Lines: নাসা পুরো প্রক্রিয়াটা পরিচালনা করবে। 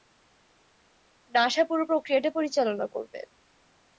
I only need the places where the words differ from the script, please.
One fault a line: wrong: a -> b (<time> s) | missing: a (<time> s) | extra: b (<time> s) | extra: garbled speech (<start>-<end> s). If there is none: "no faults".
no faults